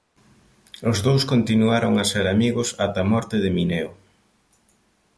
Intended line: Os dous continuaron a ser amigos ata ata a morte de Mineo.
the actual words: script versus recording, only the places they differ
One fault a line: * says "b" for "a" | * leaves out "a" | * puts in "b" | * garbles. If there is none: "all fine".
* leaves out "ata"